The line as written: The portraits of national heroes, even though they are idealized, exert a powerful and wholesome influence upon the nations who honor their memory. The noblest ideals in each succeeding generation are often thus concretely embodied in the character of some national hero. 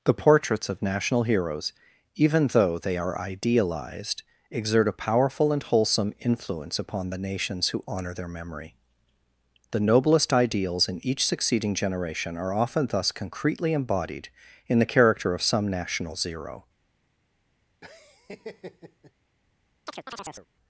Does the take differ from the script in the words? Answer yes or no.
yes